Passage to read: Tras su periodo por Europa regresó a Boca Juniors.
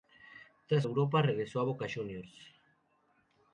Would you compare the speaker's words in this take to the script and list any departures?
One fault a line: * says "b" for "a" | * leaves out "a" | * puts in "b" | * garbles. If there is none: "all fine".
* leaves out "su periodo por"